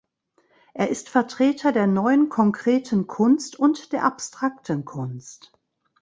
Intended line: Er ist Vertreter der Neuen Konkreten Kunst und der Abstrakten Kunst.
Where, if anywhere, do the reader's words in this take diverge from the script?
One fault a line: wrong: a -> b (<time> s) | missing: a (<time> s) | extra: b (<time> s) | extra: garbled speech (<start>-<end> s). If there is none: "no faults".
no faults